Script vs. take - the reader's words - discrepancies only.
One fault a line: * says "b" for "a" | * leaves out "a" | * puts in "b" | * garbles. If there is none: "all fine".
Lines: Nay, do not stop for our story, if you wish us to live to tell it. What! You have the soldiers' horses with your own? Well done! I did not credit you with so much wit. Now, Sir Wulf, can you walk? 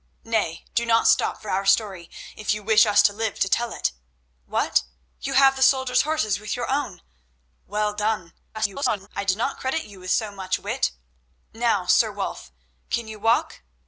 * garbles